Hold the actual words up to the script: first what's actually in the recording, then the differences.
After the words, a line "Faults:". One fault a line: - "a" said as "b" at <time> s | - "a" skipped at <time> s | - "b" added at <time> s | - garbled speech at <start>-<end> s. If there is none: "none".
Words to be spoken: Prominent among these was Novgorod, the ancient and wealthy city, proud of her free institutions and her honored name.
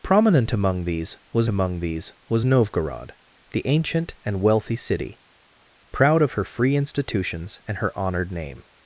Prominent among these was among these was Novgorod, the ancient and wealthy city, proud of her free institutions and her honored name.
Faults:
- "among these was" added at 1.5 s